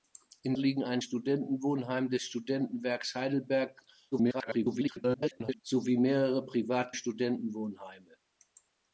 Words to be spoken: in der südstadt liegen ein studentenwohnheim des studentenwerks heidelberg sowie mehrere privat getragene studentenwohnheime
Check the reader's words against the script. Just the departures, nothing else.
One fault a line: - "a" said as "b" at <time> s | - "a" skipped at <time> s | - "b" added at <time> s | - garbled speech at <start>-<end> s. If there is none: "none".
- "der südstadt" skipped at 0.6 s
- garbled speech at 4.1-5.6 s
- "getragene" skipped at 6.9 s